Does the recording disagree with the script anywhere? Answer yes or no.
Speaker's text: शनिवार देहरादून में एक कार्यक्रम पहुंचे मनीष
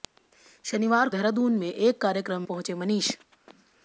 no